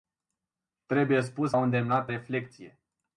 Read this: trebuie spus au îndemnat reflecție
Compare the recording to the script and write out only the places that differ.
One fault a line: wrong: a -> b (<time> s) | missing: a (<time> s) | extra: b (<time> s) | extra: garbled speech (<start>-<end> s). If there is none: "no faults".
no faults